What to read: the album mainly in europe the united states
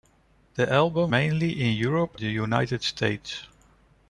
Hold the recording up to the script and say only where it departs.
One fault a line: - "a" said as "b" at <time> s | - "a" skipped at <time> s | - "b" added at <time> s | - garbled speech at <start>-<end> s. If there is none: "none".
none